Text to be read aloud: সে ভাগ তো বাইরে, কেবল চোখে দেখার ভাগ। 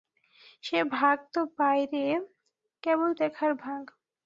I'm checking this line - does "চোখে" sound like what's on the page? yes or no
no